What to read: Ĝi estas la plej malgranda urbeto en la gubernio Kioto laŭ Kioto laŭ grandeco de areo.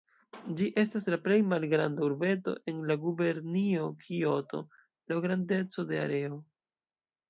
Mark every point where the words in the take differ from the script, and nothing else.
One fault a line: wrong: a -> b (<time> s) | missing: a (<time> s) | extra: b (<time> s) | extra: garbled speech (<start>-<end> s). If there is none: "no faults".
missing: Kioto laŭ (5.2 s)